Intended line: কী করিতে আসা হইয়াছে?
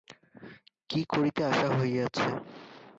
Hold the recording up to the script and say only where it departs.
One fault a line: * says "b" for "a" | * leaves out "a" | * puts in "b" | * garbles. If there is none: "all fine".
all fine